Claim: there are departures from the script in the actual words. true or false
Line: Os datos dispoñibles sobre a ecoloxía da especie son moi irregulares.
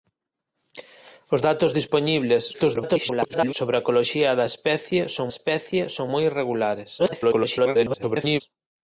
true